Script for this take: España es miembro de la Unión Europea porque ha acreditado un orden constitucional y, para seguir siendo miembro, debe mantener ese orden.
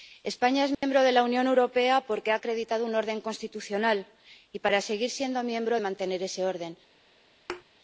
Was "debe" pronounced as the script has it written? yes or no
no